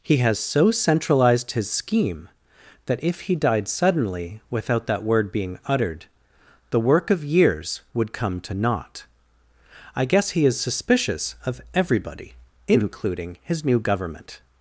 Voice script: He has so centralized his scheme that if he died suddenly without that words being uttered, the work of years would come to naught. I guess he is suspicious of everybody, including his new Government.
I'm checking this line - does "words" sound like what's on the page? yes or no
no